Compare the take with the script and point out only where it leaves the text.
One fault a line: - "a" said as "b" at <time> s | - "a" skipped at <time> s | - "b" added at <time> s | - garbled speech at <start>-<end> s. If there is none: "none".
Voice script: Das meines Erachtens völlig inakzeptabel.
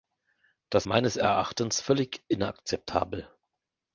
none